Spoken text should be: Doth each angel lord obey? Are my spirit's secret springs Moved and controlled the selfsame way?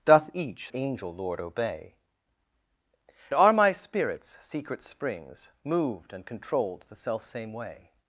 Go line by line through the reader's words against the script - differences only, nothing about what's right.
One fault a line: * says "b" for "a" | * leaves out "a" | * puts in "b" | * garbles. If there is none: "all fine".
all fine